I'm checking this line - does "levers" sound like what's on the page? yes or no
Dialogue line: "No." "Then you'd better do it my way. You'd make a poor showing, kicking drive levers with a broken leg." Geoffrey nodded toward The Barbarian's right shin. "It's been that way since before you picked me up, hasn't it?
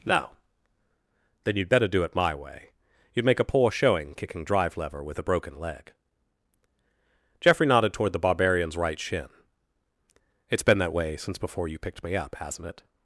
no